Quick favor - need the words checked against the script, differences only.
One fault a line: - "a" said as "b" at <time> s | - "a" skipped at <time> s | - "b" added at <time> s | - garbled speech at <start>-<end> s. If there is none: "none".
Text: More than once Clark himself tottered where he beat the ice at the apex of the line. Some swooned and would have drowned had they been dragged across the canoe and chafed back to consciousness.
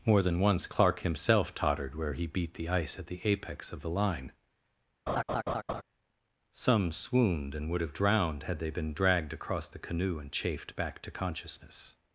none